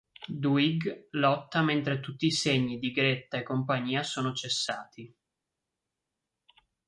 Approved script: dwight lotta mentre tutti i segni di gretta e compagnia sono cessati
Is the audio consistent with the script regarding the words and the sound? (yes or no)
yes